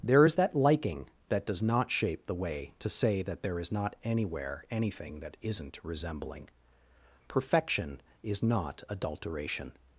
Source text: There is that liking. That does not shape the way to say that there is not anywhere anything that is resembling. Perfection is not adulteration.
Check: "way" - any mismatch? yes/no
no